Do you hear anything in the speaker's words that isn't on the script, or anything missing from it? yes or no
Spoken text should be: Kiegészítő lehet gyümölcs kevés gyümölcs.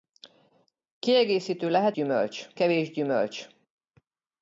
no